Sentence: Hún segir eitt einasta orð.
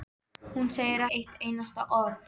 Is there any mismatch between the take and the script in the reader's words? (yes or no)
no